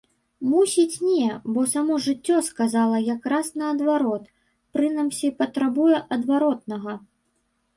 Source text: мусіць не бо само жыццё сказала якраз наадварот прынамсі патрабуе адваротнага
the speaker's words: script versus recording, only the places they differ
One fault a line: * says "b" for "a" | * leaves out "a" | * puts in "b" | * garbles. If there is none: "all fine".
all fine